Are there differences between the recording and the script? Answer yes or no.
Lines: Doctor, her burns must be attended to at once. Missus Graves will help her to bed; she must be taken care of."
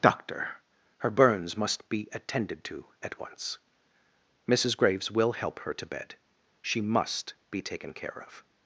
no